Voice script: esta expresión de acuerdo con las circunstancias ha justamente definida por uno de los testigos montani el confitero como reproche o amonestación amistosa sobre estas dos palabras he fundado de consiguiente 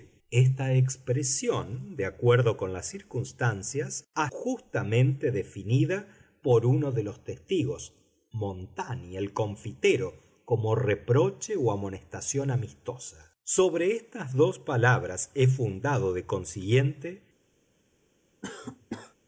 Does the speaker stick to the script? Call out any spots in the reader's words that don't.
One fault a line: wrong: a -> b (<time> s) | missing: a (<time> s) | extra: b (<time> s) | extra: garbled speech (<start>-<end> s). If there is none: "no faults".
no faults